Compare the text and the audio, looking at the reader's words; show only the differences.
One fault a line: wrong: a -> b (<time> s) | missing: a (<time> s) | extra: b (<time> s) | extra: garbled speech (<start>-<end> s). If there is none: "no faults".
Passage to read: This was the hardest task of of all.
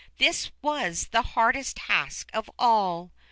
missing: of (2.5 s)